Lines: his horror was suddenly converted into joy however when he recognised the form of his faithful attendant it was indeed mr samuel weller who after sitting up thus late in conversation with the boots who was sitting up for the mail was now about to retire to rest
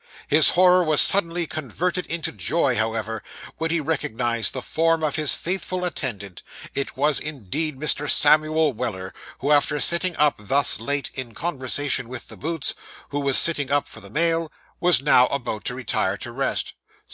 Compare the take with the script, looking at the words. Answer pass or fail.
pass